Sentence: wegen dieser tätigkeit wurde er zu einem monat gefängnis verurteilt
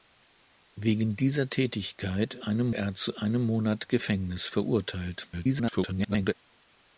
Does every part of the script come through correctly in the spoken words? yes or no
no